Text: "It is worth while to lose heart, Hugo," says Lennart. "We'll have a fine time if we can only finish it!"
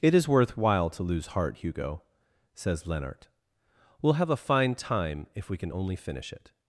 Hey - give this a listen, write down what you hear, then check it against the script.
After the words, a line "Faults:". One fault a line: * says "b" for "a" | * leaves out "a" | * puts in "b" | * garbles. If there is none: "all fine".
"It is worth while to lose heart, Hugo," says Lennart. "We'll have a fine time if we can only finish it!"
Faults:
all fine